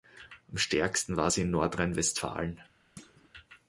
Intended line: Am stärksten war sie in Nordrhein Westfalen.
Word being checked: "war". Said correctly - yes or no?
yes